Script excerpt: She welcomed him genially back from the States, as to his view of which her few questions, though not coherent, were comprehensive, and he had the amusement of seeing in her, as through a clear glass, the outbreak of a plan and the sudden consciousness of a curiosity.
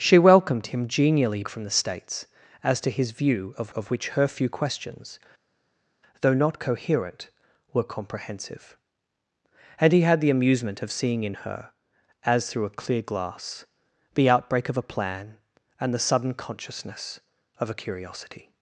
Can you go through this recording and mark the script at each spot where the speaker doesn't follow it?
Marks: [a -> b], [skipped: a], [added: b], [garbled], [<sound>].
She welcomed him genially [skipped: back] from the States, as to his view of [added: of] which her few questions, though not coherent, were comprehensive, and he had the amusement of seeing in her, as through a clear glass, the outbreak of a plan and the sudden consciousness of a curiosity.